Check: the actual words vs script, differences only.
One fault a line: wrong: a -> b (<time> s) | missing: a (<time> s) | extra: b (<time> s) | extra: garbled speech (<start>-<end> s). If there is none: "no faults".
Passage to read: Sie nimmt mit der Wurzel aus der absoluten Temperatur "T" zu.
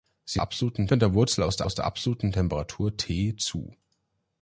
wrong: nimmt -> absoluten (0.4 s)
extra: aus der (1.6 s)